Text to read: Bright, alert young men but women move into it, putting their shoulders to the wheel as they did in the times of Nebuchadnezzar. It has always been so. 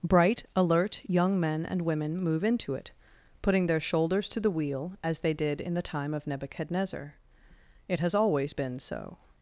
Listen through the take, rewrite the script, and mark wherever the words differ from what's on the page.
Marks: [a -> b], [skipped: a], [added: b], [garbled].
Bright, alert young men [but -> and] women move into it, putting their shoulders to the wheel as they did in the [times -> time] of Nebuchadnezzar. It has always been so.